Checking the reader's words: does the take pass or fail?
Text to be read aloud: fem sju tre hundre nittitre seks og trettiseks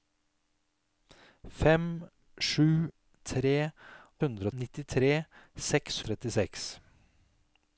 pass